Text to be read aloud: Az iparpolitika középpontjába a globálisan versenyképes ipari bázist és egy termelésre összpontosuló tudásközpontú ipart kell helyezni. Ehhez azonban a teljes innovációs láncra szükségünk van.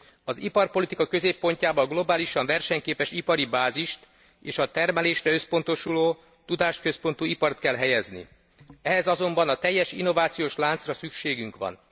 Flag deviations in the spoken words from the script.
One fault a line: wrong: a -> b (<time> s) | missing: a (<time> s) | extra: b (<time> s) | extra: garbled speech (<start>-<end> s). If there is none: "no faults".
wrong: egy -> a (4.6 s)